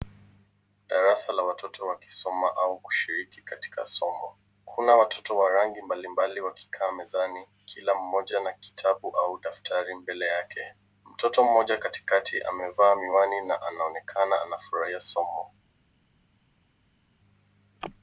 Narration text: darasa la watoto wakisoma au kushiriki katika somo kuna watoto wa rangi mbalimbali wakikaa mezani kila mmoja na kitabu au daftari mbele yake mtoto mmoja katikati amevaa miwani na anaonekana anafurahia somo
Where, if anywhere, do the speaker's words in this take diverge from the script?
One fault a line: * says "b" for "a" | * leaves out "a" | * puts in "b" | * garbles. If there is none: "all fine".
all fine